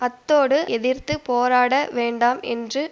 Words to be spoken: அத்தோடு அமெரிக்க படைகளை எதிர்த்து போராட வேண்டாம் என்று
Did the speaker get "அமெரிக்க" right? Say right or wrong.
wrong